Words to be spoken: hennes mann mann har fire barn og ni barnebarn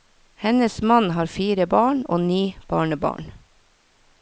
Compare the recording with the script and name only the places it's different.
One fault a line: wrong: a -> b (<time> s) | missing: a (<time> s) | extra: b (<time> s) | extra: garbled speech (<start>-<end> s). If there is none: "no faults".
missing: mann (1.1 s)